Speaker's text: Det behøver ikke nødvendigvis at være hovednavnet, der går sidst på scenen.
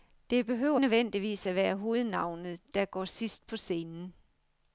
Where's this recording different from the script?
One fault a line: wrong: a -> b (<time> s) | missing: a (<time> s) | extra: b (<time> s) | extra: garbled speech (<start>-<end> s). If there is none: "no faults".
missing: ikke (0.8 s)